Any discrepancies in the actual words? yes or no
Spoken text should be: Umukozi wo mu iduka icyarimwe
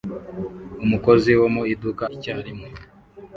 no